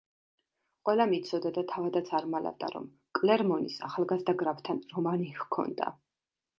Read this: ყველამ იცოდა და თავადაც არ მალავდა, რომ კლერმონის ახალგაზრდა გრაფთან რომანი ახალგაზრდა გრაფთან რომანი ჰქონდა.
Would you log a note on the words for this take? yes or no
yes